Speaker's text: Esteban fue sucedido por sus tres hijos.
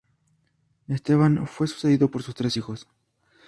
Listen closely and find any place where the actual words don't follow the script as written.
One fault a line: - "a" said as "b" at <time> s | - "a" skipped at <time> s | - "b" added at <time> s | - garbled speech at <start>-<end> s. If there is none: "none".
none